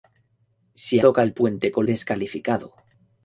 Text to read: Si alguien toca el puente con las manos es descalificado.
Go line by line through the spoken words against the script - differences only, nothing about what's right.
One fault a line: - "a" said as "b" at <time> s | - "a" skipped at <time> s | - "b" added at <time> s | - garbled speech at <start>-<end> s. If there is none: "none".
- "alguien" skipped at 1.0 s
- "las manos es" skipped at 1.9 s